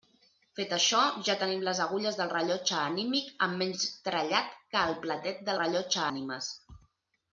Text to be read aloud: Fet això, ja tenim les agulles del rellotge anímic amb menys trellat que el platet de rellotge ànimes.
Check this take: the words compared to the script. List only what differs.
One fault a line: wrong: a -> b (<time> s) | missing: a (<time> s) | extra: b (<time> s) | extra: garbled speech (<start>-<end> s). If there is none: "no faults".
no faults